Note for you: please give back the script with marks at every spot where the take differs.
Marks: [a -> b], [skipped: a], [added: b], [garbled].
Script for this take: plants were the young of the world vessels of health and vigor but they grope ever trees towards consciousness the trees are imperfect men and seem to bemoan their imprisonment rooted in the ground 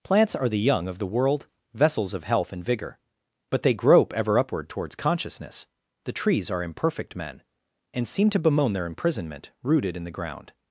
plants [were -> are] the young of the world vessels of health and vigor but they grope ever [trees -> upward] towards consciousness the trees are imperfect men and seem to bemoan their imprisonment rooted in the ground